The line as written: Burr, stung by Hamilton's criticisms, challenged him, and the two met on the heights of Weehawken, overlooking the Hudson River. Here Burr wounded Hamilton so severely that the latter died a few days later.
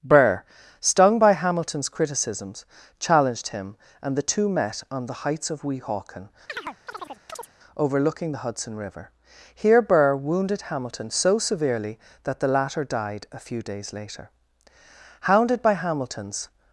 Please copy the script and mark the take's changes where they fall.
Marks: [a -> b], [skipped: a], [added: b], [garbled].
Burr, stung by Hamilton's criticisms, challenged him, and the two met on the heights of Weehawken, overlooking the Hudson River. Here Burr wounded Hamilton so severely that the latter died a few days later. [added: Hounded by Hamilton's]